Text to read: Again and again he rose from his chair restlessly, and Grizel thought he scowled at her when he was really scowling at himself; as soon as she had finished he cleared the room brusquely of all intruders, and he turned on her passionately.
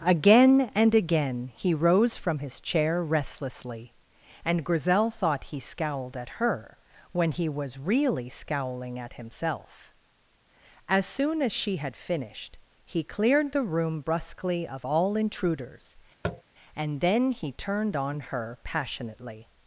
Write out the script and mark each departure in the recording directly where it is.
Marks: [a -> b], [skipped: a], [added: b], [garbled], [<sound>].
Again and again he rose from his chair restlessly, and Grizel thought he scowled at her when he was really scowling at himself; as soon as she had finished he cleared the room brusquely of all intruders, [tap] and [added: then] he turned on her passionately.